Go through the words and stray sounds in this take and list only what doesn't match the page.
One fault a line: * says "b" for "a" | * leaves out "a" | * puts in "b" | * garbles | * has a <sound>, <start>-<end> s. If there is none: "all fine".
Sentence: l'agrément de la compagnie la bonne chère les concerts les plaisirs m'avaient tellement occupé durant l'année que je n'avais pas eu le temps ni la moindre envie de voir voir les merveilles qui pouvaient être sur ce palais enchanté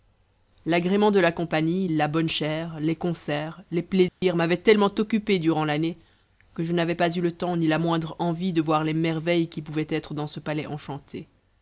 * has a dropout, 4.1-4.2 s
* leaves out "voir"
* says "dans" for "sur"